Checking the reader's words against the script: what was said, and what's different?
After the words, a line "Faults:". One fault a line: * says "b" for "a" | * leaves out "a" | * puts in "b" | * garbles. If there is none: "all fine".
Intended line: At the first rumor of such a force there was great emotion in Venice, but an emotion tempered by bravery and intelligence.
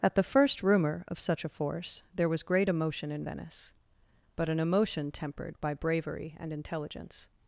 At the first rumor of such a force there was great emotion in Venice, but an emotion tempered by bravery and intelligence.
Faults:
all fine